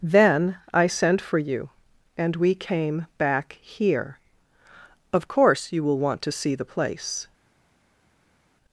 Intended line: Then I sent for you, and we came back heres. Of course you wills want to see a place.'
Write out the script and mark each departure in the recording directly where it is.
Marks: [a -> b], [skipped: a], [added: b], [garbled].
Then I sent for you, and we came back [heres. -> here] Of course you [wills -> will] want to see [a -> the] place.'